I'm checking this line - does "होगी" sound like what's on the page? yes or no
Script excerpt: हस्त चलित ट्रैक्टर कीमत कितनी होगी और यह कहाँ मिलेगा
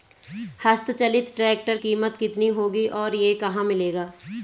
yes